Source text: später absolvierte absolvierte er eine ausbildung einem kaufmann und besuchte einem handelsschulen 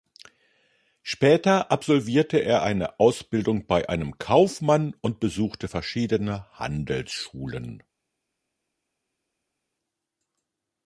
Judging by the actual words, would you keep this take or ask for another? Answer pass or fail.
fail